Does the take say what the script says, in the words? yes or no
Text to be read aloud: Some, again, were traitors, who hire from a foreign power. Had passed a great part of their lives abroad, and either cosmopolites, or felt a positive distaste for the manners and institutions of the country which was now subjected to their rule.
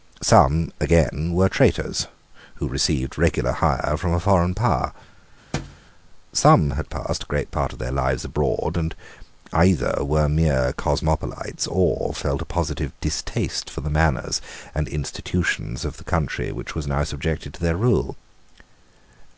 no